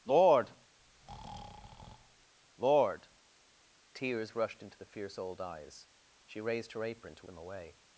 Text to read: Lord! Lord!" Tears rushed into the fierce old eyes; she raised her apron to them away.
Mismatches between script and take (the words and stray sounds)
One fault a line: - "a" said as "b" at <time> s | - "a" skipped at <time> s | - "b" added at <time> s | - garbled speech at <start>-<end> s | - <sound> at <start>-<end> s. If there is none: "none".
- breath at 0.8-2.3 s